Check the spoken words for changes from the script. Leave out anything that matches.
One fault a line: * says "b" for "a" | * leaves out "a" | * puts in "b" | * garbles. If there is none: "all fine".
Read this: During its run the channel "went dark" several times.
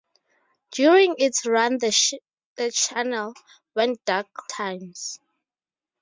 * leaves out "several"